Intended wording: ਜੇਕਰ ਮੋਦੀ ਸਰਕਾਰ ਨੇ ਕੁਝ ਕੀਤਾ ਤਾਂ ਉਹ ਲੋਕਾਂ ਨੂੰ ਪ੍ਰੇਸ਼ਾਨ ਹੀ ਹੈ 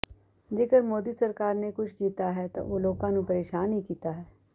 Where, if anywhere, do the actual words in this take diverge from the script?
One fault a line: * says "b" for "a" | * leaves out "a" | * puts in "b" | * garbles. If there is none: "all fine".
* puts in "ਹੈ"
* puts in "ਕੀਤਾ"